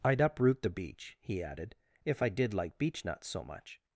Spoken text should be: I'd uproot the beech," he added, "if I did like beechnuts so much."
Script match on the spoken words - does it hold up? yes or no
yes